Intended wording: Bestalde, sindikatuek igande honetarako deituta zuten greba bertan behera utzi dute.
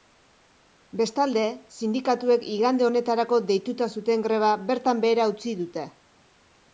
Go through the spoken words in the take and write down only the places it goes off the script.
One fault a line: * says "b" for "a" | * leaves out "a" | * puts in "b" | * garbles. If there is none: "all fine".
all fine